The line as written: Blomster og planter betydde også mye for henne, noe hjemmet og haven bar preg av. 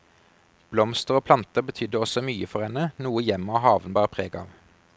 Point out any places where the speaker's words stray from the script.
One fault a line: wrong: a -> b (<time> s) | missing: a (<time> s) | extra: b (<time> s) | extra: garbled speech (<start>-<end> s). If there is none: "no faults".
no faults